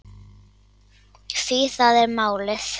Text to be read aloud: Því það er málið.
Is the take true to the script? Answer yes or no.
yes